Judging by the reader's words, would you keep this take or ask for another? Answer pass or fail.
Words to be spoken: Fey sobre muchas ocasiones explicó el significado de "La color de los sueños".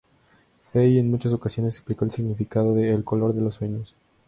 fail